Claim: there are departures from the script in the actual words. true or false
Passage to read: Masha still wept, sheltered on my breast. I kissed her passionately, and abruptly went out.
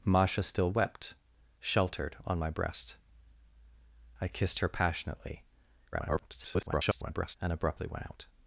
true